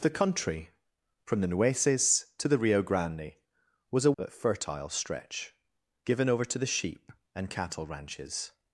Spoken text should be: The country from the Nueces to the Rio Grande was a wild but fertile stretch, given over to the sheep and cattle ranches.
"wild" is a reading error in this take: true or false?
true